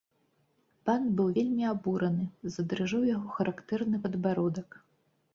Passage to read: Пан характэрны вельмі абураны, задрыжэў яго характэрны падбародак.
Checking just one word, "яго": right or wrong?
right